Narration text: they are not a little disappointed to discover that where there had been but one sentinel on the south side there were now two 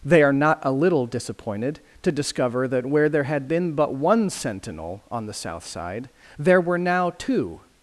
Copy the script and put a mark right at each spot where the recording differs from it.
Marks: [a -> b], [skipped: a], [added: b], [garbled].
they are not a little disappointed to discover that where there had been but one sentinel on the south side there were now two